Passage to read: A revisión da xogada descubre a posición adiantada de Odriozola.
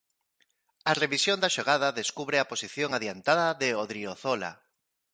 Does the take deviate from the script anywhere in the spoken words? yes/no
no